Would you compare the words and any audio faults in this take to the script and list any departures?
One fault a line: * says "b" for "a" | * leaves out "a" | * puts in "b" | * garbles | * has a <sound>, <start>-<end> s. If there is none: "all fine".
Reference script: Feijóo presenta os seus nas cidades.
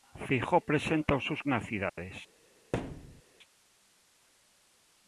* has a dropout, 1.9-2.0 s
* has a thud, 2.7-3.2 s